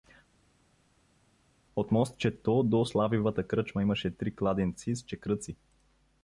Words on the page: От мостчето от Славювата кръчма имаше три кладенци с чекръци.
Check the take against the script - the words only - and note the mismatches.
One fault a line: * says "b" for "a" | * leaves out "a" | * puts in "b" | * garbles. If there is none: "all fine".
* says "до" for "от"